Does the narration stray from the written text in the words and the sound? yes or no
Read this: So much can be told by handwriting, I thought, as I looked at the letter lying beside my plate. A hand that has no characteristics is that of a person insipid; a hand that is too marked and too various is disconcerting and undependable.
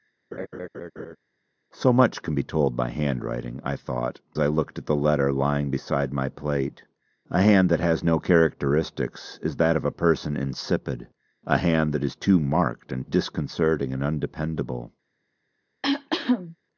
yes